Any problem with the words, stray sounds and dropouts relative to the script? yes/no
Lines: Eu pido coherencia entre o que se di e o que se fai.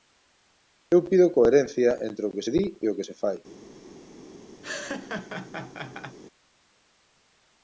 yes